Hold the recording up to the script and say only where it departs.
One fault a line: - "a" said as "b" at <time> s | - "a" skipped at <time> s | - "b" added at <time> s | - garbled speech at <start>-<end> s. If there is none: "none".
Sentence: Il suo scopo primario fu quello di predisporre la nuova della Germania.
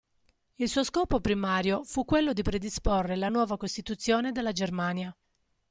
- "costituzione" added at 3.6 s